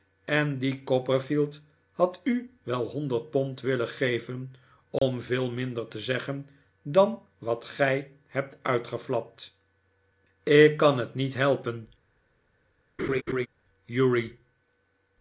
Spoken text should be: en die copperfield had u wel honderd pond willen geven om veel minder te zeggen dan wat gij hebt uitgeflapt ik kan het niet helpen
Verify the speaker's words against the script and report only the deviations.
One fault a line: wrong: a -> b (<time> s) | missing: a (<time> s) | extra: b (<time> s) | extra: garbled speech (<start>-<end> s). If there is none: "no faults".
no faults